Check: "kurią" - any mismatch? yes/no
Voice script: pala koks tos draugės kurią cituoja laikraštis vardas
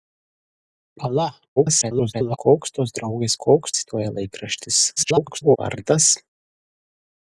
yes